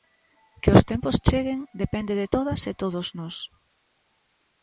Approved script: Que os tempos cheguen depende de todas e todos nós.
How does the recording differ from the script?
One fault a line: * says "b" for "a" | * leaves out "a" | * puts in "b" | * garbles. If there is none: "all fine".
all fine